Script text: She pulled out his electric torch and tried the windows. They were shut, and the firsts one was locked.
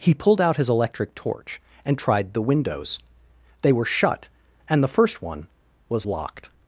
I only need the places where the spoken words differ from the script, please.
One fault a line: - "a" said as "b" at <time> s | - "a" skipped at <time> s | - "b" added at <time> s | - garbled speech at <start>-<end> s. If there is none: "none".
- "She" said as "He" at 0.0 s
- "firsts" said as "first" at 4.9 s